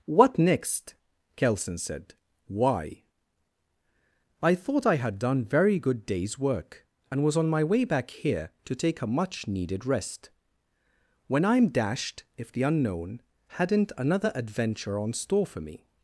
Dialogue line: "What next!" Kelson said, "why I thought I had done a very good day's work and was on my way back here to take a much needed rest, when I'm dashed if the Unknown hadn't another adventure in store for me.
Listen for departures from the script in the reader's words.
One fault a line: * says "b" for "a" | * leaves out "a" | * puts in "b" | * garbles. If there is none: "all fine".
* leaves out "a"
* says "on" for "in"